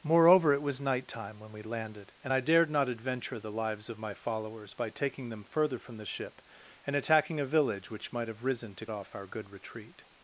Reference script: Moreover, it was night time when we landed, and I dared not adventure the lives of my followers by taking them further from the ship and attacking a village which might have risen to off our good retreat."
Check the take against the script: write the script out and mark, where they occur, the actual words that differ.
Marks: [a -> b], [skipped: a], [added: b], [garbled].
Moreover, it was night time when we landed, and I dared not adventure the lives of my followers by taking them further from the ship and attacking a village which might have risen to off our good retreat."